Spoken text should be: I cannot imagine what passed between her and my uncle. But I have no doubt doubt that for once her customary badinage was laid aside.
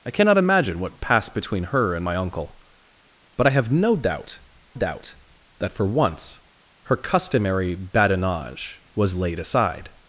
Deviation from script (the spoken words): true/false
false